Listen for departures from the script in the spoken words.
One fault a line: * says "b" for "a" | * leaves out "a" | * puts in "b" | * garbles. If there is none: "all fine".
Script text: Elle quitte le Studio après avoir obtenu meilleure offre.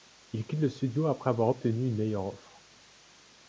* says "Il" for "Elle"
* puts in "une"